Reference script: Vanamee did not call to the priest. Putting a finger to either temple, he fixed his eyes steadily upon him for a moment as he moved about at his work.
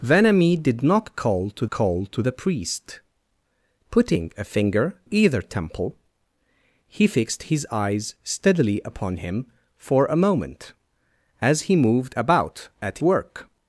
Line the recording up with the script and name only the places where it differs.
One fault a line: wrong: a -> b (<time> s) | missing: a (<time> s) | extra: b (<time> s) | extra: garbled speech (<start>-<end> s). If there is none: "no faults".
extra: call to (1.7 s)
missing: to (5.0 s)
missing: his (13.0 s)